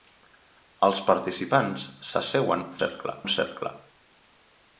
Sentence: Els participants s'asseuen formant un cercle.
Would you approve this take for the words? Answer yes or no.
no